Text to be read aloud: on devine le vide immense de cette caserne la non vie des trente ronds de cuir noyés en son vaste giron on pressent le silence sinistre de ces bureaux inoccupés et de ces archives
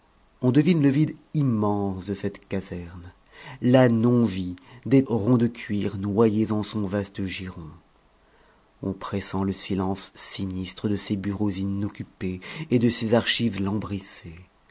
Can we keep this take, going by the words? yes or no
no